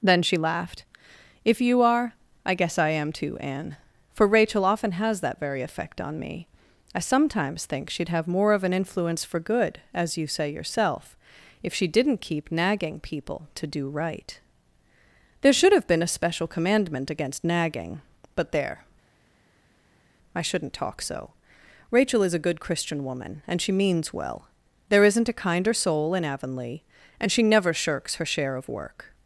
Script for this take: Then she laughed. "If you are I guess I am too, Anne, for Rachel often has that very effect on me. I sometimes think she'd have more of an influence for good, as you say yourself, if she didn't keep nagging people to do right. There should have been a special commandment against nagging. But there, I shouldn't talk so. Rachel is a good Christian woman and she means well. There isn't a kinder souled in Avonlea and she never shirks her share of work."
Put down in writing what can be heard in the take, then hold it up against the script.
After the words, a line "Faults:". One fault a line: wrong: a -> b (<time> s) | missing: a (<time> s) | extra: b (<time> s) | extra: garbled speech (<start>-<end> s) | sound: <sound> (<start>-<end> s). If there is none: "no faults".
Then she laughed. "If you are I guess I am too, Anne, for Rachel often has that very effect on me. I sometimes think she'd have more of an influence for good, as you say yourself, if she didn't keep nagging people to do right. There should have been a special commandment against nagging. But there, I shouldn't talk so. Rachel is a good Christian woman and she means well. There isn't a kinder soul in Avonlea and she never shirks her share of work."
Faults:
wrong: souled -> soul (25.7 s)